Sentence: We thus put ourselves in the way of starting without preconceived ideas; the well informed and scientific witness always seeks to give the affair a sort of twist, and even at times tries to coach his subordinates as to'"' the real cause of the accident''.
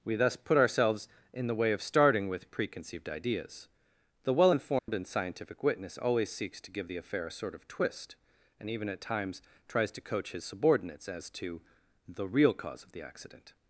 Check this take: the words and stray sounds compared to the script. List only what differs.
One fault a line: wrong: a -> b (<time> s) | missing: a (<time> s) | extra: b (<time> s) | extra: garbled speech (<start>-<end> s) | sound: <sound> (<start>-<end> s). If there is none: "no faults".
wrong: without -> with (2.3 s)
sound: dropout (4.8-4.9 s)